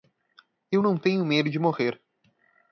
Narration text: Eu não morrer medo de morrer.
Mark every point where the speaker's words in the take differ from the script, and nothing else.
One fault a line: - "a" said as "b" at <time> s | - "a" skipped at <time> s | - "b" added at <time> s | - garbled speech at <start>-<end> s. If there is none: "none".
- "morrer" said as "tenho" at 1.0 s